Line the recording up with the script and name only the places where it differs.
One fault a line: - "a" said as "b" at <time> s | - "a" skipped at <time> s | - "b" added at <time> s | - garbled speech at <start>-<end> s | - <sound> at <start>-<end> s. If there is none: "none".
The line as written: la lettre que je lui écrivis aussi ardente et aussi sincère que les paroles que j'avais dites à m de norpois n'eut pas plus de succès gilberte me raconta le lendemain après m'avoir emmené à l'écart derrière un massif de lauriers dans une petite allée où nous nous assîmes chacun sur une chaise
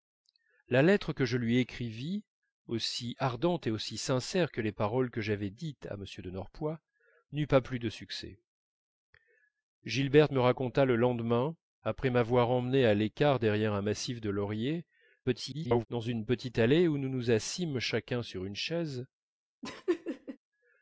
- garbled speech at 15.2-15.9 s
- laugh at 19.6-20.4 s